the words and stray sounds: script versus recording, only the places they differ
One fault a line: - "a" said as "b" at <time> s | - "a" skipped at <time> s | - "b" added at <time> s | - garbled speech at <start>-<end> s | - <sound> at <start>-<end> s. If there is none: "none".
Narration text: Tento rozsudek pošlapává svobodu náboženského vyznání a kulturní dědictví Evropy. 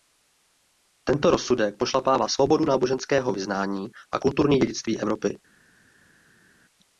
none